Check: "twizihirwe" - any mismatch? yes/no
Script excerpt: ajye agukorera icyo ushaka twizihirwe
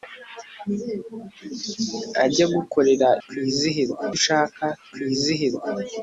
no